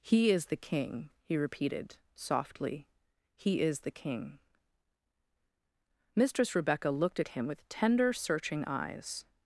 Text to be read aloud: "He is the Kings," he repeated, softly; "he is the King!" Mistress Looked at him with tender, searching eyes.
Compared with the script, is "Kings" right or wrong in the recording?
wrong